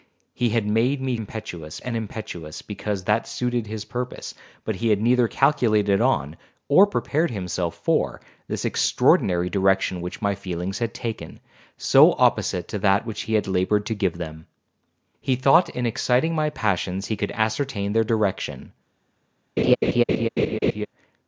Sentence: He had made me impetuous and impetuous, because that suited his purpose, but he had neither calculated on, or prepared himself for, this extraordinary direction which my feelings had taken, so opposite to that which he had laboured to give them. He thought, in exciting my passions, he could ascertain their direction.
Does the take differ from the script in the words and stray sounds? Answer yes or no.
yes